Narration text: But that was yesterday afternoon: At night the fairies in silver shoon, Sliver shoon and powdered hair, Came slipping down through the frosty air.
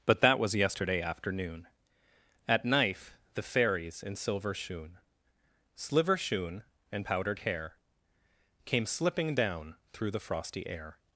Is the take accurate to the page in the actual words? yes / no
no